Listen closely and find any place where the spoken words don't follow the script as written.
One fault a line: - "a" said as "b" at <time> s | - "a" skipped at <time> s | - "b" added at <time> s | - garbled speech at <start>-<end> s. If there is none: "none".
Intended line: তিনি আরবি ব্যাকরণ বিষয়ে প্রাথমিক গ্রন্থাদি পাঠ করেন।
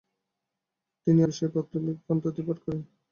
- "আরবি ব্যাকরণ" skipped at 1.2 s